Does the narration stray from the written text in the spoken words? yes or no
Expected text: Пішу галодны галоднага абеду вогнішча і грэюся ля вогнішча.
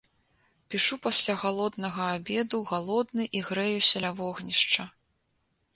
yes